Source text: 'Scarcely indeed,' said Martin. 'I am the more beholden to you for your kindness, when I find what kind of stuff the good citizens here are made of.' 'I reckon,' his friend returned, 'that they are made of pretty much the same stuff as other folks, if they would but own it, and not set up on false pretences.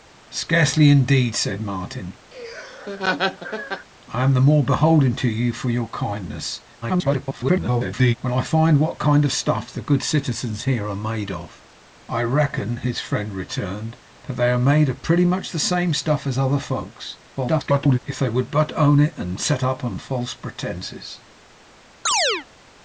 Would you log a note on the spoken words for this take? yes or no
yes